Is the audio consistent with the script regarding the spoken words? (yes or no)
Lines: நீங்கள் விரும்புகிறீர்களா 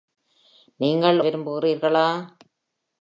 yes